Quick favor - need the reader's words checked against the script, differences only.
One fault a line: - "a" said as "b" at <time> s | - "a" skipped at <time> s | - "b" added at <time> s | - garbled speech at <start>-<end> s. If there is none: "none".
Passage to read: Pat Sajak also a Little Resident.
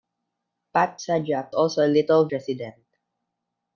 none